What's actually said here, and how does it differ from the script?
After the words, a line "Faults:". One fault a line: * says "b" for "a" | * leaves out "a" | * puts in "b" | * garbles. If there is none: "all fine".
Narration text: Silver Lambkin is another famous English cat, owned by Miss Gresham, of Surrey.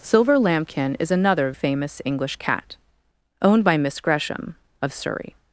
Silver Lambkin is another famous English cat, owned by Miss Gresham, of Surrey.
Faults:
all fine